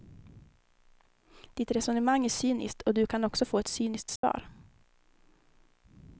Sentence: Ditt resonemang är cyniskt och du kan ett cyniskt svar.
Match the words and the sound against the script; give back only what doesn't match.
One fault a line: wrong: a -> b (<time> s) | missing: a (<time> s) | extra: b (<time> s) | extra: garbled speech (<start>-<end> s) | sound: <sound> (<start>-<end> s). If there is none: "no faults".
extra: också få (3.2 s)
sound: dropout (4.2-4.2 s)